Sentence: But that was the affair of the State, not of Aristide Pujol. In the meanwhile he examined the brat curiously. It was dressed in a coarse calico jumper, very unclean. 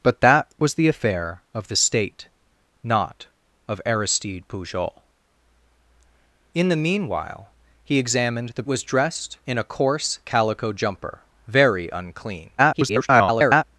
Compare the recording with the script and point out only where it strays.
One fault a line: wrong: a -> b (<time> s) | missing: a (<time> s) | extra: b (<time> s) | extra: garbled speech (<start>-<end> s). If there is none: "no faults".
missing: brat curiously It (8.6 s)
extra: garbled speech (12.6-13.6 s)